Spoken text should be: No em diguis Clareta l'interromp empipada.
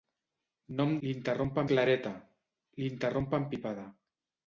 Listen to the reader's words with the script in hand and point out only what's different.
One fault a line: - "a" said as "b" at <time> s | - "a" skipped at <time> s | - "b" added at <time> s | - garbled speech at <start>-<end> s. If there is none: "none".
- "diguis" said as "l'interromp" at 1.1 s